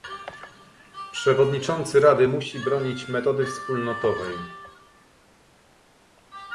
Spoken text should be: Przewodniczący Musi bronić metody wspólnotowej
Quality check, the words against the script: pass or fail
fail